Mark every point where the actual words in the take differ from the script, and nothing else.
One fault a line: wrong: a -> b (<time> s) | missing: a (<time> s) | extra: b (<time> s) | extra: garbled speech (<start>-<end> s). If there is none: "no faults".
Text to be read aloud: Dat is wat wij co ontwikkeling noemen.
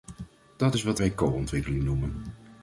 no faults